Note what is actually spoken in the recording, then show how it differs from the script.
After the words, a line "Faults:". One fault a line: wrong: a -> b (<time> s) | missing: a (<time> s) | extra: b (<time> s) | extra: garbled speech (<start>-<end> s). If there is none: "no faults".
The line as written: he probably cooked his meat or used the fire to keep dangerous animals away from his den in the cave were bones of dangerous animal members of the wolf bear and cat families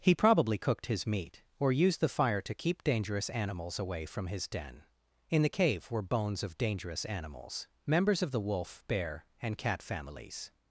he probably cooked his meat or used the fire to keep dangerous animals away from his den in the cave were bones of dangerous animals members of the wolf bear and cat families
Faults:
wrong: animal -> animals (7.0 s)